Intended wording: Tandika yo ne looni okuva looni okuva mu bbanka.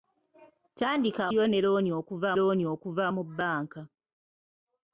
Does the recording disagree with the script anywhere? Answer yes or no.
no